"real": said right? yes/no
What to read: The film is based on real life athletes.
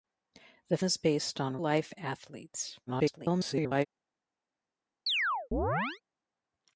no